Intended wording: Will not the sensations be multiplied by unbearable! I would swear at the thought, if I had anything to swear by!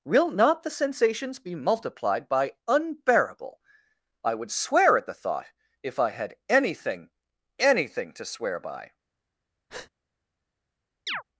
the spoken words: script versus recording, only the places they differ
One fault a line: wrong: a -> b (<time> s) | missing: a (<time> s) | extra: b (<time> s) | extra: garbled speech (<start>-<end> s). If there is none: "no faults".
extra: anything (7.6 s)